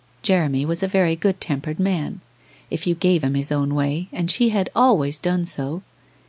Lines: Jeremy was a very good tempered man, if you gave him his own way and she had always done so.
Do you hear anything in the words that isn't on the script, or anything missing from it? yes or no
no